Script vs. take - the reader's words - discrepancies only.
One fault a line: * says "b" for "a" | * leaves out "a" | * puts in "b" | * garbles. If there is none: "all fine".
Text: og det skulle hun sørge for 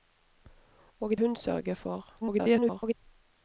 * leaves out "det skulle"
* garbles